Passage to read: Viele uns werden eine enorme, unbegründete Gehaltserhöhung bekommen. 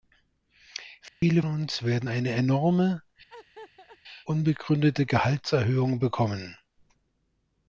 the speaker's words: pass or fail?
pass